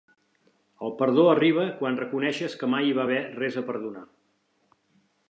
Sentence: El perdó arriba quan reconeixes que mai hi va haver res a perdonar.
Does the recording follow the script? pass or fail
pass